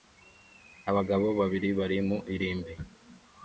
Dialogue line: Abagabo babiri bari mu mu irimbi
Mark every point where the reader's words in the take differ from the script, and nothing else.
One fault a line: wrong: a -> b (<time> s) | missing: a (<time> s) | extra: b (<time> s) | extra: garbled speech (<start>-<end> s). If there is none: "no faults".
missing: mu (2.2 s)